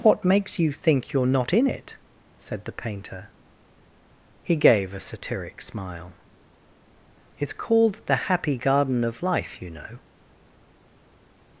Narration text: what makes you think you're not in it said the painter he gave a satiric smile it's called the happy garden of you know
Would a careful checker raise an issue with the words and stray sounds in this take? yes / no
yes